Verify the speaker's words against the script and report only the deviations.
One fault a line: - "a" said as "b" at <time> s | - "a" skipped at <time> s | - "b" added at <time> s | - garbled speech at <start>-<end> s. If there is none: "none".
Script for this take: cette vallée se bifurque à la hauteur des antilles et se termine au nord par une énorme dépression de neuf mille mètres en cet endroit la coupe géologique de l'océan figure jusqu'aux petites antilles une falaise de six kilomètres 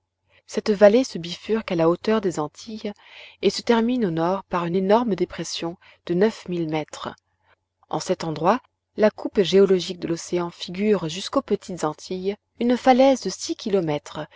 none